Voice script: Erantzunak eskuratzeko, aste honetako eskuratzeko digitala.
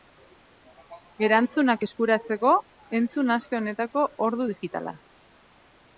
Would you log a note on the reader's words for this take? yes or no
yes